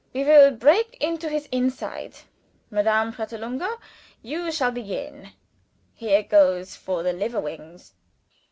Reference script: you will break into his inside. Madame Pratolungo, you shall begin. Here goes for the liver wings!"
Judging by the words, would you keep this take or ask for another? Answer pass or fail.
fail